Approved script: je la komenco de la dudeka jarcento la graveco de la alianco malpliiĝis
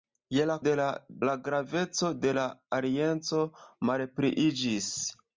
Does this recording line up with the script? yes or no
no